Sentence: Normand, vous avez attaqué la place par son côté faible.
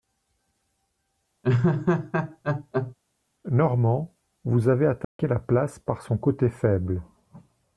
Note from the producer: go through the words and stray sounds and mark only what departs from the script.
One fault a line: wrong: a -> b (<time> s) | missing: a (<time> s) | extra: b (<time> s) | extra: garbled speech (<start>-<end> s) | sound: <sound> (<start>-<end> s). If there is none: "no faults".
sound: laugh (1.4-2.9 s)
sound: dropout (5.0-5.2 s)